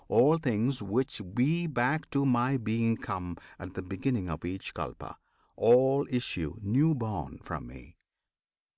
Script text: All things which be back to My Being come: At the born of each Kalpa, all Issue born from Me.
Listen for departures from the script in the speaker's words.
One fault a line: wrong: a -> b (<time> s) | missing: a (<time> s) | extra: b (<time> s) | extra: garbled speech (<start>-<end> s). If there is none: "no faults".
wrong: born -> beginning (3.8 s)
extra: new (6.6 s)